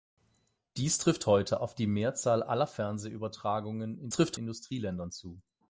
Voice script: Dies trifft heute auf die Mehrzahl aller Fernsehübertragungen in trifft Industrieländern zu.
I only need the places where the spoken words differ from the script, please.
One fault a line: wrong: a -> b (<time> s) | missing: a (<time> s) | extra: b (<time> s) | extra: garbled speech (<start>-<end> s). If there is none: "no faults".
no faults